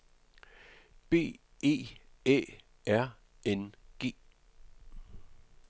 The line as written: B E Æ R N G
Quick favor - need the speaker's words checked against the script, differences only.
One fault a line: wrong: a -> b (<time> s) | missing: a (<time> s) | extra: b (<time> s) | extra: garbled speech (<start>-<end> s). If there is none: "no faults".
no faults